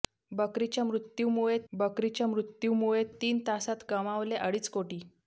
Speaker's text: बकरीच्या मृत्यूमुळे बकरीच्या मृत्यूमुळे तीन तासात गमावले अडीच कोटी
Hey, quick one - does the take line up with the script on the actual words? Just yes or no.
yes